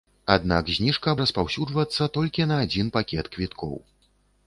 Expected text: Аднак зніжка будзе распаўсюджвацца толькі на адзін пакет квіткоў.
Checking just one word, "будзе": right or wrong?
wrong